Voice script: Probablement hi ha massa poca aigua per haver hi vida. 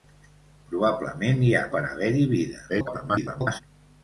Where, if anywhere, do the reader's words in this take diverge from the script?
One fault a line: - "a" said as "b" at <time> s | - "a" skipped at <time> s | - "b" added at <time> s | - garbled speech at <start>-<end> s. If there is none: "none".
- "massa poca aigua" skipped at 1.6 s
- garbled speech at 2.7-3.6 s